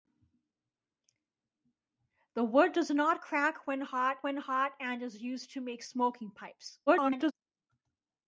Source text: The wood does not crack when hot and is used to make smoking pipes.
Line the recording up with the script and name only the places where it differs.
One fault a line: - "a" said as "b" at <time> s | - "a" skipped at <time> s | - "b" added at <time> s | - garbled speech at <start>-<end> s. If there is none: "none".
- "when hot" added at 4.2 s
- garbled speech at 6.9-7.3 s